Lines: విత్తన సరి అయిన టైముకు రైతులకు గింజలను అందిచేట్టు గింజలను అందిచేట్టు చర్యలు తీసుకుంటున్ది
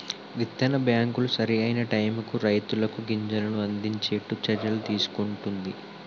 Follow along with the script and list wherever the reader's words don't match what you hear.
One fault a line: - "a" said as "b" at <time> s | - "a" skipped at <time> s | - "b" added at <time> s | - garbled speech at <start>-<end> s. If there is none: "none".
- "బ్యాంకులు" added at 0.8 s
- "గింజలను అందిచేట్టు" skipped at 4.4 s